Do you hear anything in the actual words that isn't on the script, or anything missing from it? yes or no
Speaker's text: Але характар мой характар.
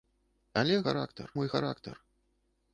no